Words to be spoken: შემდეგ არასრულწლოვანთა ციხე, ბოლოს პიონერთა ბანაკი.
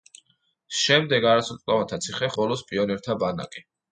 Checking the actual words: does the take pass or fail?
pass